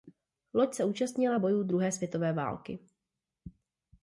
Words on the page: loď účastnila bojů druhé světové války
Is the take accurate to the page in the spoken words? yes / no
no